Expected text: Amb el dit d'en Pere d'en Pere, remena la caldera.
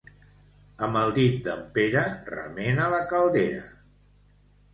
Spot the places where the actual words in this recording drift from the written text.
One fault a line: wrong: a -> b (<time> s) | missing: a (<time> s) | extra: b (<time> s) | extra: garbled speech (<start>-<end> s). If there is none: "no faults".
missing: d'en Pere (2.0 s)